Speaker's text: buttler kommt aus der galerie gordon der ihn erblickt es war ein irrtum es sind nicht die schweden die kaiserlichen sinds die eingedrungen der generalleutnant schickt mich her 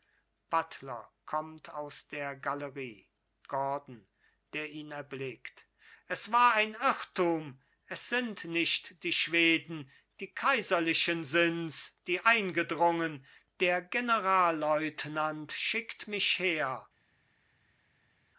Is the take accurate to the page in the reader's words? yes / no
yes